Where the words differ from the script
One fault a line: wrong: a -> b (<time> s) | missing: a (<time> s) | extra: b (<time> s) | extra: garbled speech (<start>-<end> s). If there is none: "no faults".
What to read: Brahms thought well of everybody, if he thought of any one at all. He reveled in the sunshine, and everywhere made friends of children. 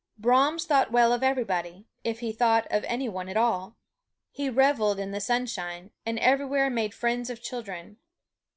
no faults